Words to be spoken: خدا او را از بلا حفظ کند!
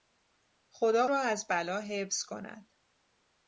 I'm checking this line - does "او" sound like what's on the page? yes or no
no